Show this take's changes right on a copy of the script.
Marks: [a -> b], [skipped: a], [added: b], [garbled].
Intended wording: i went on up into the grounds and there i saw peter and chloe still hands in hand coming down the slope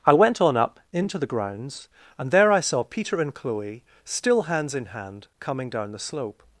i went on up into the grounds and there i saw peter and chloe still hands in hand coming down the slope